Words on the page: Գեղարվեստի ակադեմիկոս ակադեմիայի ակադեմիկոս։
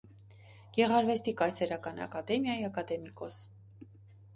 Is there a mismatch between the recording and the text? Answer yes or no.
yes